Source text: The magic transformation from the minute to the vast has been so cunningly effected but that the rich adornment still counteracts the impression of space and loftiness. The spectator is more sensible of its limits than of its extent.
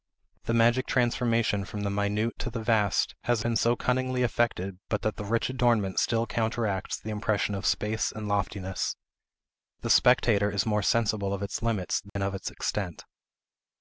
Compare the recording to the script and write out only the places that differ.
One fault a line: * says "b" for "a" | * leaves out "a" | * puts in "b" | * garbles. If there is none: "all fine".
all fine